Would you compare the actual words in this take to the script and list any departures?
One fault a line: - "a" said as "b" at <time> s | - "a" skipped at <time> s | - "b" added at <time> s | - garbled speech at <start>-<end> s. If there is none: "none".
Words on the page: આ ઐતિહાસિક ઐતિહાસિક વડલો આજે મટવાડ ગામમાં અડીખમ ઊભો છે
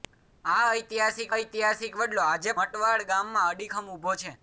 none